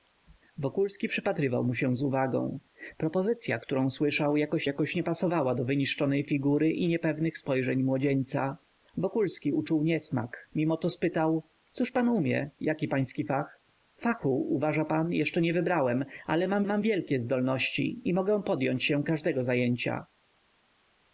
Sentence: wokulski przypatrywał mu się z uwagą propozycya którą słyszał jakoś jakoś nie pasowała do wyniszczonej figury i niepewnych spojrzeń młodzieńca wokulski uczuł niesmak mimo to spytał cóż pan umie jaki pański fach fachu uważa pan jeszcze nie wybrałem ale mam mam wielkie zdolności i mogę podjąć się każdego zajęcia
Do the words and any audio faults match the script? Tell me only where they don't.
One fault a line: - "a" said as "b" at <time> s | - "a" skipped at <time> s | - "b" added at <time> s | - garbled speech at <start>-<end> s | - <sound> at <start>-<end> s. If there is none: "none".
none